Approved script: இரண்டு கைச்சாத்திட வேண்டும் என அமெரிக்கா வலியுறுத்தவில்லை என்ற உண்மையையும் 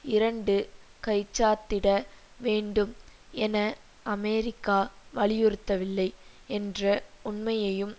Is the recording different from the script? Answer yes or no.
no